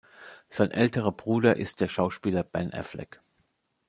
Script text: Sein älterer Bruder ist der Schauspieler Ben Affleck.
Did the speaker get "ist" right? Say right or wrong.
right